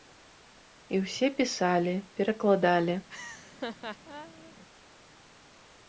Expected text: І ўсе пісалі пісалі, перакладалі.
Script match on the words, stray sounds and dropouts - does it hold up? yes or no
no